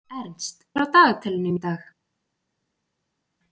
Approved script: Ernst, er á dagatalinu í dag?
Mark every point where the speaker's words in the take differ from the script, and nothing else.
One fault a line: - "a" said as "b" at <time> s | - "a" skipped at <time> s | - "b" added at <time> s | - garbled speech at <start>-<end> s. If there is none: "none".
none